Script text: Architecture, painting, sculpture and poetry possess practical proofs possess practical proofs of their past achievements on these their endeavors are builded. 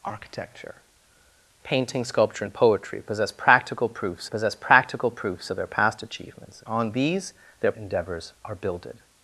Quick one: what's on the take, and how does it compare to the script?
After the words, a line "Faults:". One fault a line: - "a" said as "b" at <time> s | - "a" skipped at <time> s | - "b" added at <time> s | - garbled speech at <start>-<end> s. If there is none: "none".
Architecture, painting, sculpture and poetry possess practical proofs possess practical proofs of their past achievements on these their endeavors are builded.
Faults:
none